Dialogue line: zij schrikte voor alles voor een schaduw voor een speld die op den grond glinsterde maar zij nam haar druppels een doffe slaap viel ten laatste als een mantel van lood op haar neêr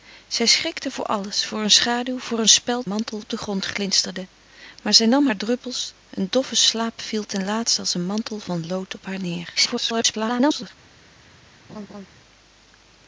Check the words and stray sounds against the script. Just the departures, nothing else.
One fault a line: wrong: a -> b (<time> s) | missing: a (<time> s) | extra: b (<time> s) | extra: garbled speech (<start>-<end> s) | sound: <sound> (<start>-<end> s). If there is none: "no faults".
wrong: die -> mantel (2.9 s)
extra: garbled speech (9.6-10.7 s)
sound: laugh (11.7-12.1 s)